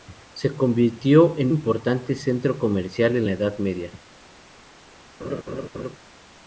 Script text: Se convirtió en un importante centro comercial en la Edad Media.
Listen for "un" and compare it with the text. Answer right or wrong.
wrong